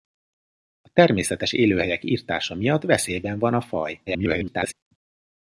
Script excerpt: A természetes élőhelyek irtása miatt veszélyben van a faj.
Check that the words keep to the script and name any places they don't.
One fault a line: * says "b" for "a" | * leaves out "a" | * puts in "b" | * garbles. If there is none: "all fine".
* garbles